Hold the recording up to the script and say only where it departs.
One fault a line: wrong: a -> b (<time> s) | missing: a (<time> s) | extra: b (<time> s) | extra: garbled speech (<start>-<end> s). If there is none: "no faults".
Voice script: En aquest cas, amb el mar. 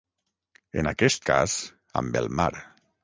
no faults